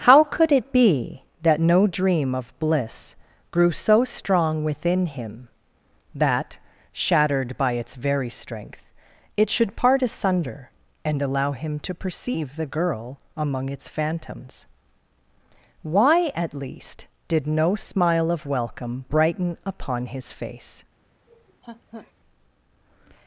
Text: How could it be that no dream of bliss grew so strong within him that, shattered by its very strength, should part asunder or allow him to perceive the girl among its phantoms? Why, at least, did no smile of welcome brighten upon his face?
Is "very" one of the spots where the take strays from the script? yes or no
no